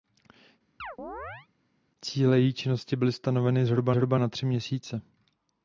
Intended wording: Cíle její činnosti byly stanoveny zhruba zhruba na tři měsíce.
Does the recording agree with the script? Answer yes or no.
yes